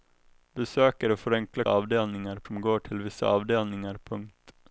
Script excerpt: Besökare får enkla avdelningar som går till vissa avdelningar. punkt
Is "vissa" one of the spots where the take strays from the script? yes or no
no